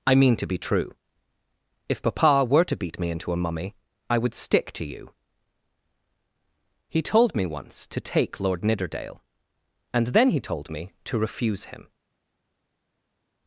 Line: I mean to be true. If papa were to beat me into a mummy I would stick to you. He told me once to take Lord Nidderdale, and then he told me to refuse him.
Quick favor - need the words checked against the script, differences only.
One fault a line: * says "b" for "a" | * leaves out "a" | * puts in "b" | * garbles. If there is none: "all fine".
all fine